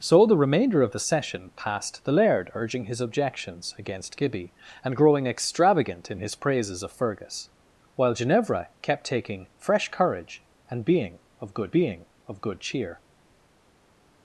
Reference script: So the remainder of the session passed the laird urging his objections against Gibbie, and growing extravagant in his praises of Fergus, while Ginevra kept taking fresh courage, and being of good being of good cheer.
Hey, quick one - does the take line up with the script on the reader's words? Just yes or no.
yes